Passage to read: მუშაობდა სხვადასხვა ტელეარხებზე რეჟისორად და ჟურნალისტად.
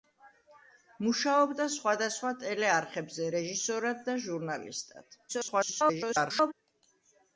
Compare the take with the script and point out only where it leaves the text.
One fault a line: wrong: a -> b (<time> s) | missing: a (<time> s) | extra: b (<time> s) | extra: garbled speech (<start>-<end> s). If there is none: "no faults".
extra: garbled speech (5.3-6.5 s)